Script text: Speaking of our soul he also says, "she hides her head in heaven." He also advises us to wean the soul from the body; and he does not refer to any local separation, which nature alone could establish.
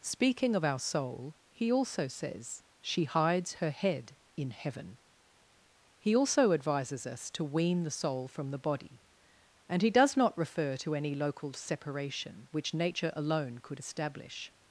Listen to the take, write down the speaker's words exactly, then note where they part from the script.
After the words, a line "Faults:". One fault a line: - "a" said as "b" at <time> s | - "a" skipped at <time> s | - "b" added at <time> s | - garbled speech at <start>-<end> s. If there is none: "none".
Speaking of our soul he also says, "she hides her head in heaven." He also advises us to wean the soul from the body; and he does not refer to any local separation, which nature alone could establish.
Faults:
none